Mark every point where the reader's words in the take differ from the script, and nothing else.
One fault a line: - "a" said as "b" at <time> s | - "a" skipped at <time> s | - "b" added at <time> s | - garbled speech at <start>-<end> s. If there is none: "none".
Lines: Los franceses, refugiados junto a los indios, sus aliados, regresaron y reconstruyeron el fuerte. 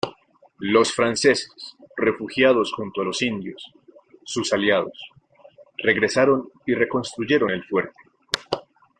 none